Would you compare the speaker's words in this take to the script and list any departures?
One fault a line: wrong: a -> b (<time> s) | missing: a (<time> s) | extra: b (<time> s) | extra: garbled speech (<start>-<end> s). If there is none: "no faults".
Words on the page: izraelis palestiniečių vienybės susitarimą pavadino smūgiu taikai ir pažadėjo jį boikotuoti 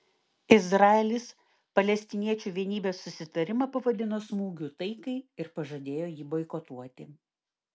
no faults